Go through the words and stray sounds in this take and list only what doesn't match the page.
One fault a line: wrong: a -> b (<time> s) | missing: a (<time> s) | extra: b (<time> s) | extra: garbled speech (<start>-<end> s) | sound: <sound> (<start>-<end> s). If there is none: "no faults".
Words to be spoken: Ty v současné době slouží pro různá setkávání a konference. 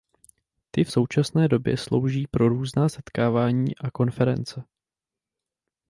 no faults